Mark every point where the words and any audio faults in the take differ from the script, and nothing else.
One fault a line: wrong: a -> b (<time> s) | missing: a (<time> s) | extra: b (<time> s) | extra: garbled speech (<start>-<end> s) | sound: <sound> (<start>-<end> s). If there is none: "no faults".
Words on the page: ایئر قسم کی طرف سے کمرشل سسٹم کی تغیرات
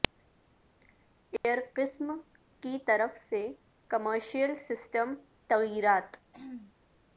sound: dropout (1.4-1.4 s)
missing: کی (5.1 s)
sound: throat clearing (6.3-6.7 s)